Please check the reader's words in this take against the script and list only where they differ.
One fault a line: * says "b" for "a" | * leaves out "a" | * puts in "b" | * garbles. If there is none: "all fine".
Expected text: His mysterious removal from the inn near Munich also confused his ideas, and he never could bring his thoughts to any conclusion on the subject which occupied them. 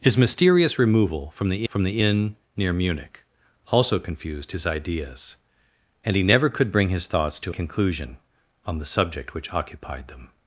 * puts in "from the"
* leaves out "any"